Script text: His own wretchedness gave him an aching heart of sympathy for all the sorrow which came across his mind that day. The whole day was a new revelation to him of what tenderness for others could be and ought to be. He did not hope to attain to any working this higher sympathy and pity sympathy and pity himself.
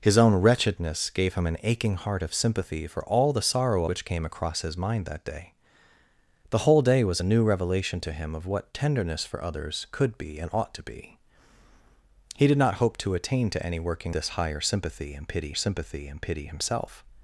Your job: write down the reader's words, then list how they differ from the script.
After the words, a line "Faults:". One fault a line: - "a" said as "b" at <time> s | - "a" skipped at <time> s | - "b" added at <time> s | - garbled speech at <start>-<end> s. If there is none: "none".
His own wretchedness gave him an aching heart of sympathy for all the sorrow which came across his mind that day. The whole day was a new revelation to him of what tenderness for others could be and ought to be. He did not hope to attain to any working this higher sympathy and pity sympathy and pity himself.
Faults:
none